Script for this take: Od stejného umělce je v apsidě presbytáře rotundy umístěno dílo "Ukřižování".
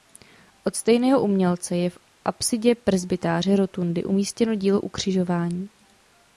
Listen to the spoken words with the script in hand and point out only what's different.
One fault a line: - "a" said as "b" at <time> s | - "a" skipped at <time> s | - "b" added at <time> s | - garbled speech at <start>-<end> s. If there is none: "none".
none